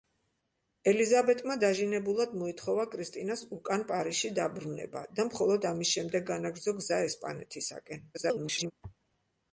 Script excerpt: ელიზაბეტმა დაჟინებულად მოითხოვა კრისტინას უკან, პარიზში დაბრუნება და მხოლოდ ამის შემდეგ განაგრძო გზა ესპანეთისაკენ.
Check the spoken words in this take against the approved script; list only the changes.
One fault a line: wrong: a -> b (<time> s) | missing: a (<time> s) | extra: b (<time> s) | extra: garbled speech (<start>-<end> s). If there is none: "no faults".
extra: garbled speech (8.1-8.7 s)